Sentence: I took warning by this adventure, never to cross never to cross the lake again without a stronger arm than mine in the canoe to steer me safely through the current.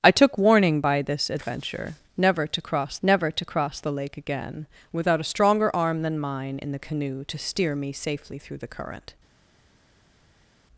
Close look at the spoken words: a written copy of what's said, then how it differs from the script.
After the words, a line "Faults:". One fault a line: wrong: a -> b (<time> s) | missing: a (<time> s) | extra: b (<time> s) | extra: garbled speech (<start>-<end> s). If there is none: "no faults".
I took warning by this adventure, never to cross never to cross the lake again without a stronger arm than mine in the canoe to steer me safely through the current.
Faults:
no faults